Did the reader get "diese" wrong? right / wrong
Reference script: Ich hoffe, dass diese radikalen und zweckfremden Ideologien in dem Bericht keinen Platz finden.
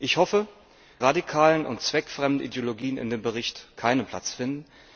wrong